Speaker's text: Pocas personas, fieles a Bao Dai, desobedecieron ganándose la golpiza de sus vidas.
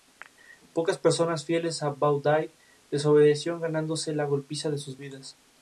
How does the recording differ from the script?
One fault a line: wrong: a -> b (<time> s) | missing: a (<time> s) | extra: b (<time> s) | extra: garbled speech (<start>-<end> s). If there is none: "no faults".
no faults